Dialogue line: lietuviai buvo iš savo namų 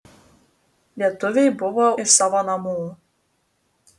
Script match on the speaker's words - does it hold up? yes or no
yes